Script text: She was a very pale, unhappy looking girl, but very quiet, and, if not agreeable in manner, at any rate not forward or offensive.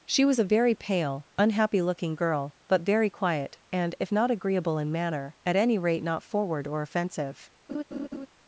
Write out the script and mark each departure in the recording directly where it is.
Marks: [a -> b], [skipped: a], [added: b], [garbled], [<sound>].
She was a very pale, unhappy looking girl, but very quiet, and, if not agreeable in manner, at any rate not forward or offensive. [laugh]